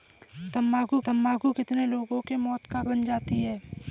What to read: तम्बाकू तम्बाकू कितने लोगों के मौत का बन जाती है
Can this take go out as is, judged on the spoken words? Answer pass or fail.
pass